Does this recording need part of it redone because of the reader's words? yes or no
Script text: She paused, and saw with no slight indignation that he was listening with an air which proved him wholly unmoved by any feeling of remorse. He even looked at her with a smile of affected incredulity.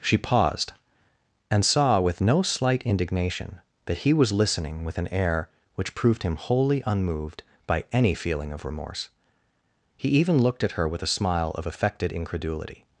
no